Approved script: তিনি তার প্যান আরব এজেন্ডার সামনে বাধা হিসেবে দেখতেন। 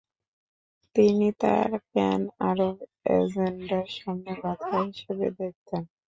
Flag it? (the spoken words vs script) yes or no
no